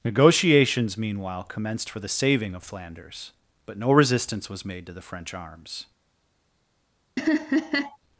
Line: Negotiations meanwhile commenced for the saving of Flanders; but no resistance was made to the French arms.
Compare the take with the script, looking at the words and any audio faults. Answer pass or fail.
fail